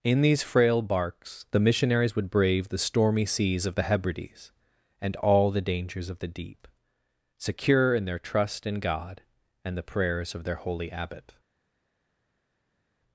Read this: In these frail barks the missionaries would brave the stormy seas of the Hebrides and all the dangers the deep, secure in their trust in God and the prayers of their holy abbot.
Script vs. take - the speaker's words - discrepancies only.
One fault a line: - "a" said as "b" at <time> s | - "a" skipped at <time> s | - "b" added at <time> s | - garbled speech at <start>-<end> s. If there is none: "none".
- "of" added at 6.1 s